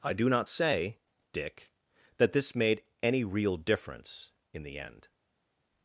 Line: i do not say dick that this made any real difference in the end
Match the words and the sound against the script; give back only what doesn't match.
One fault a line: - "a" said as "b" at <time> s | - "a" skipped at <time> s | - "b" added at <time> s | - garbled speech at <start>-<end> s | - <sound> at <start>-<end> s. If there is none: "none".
none